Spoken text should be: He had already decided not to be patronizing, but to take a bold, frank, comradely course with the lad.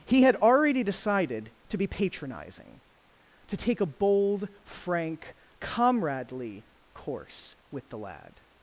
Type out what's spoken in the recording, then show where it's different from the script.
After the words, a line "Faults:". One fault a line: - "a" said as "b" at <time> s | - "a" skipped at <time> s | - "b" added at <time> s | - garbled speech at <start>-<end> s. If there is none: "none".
He had already decided to be patronizing, to take a bold, frank, comradely course with the lad.
Faults:
- "not" skipped at 1.5 s
- "but" skipped at 2.8 s